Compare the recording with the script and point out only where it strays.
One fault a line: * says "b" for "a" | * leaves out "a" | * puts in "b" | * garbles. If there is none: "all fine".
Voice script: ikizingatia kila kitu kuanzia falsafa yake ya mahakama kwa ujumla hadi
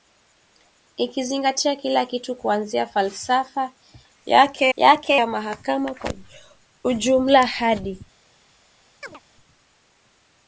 * puts in "yake"